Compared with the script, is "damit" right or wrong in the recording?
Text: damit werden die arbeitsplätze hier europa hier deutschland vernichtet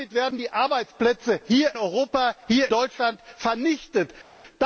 right